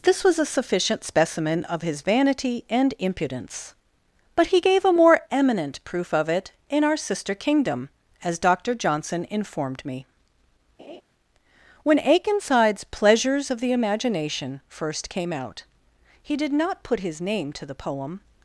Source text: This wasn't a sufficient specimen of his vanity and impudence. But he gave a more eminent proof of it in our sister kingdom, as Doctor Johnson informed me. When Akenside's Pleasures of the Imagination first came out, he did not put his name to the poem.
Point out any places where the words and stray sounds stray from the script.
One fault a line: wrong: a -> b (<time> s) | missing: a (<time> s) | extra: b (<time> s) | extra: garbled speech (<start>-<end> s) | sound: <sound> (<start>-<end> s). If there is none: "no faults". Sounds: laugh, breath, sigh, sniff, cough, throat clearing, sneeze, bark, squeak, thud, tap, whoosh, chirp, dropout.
wrong: wasn't -> was (0.2 s)
sound: laugh (10.8-11.0 s)